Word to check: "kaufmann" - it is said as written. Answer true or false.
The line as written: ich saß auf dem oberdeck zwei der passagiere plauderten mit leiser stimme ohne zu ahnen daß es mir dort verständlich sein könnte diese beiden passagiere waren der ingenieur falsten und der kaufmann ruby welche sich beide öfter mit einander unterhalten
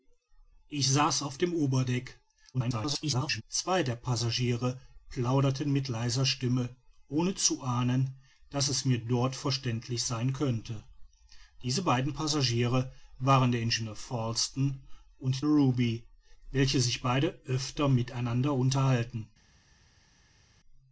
false